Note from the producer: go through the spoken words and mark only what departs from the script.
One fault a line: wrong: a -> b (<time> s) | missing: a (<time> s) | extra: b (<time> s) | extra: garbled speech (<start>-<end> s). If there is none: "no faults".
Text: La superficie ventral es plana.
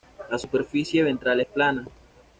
no faults